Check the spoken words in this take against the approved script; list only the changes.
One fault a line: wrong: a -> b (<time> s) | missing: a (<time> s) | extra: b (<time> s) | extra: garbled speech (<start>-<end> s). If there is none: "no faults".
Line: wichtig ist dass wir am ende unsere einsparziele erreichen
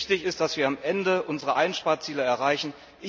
no faults